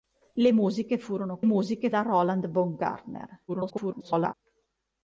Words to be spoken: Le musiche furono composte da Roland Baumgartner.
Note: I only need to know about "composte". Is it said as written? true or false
false